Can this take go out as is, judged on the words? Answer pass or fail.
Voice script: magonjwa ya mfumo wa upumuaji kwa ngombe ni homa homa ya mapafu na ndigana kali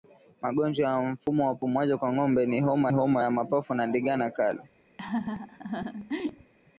pass